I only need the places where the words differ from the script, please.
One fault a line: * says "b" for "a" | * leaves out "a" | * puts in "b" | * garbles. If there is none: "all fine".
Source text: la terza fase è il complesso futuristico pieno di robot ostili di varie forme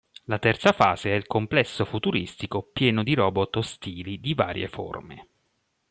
all fine